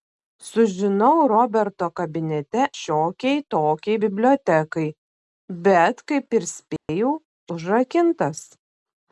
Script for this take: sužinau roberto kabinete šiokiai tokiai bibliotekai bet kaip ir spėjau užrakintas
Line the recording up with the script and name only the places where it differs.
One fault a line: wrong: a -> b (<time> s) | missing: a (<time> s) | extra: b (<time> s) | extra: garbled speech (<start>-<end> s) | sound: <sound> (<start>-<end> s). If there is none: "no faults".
sound: dropout (6.8-6.9 s)